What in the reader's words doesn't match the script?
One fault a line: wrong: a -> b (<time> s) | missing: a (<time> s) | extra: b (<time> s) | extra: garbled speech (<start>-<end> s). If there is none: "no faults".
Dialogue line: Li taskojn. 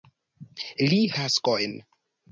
no faults